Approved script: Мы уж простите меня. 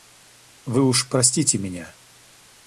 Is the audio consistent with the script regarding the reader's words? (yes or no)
no